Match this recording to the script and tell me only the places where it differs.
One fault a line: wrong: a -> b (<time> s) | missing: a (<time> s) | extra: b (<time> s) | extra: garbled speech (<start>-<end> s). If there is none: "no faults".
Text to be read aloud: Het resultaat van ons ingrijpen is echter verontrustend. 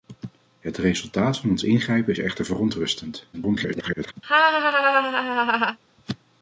extra: garbled speech (3.3-4.1 s)